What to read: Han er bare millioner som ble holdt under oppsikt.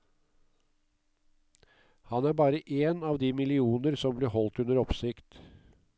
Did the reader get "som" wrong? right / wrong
right